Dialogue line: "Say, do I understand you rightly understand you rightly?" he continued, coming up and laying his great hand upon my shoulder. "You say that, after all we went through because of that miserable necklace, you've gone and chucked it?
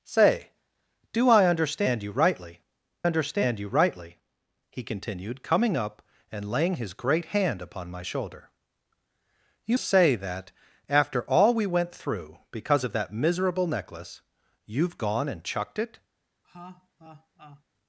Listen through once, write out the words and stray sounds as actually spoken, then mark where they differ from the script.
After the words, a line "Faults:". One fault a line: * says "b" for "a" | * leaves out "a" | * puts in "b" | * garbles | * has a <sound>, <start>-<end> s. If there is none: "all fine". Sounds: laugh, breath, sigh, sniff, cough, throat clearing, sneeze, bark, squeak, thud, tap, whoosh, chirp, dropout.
"Say, do I understand you rightly understand you rightly?" he continued, coming up and laying his great hand upon my shoulder. "You say that, after all we went through because of that miserable necklace, you've gone and chucked it?
Faults:
* has a laugh, 16.4-17.6 s